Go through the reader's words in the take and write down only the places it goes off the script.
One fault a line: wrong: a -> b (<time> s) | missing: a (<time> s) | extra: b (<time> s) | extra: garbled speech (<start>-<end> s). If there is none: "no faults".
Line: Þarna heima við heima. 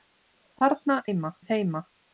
no faults